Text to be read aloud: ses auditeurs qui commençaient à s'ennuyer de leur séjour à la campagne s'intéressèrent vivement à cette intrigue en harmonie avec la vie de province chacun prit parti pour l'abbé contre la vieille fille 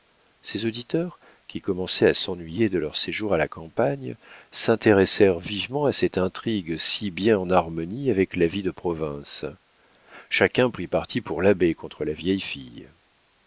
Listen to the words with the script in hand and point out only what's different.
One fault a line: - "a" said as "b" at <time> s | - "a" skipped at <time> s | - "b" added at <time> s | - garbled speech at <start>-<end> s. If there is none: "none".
- "si bien" added at 6.8 s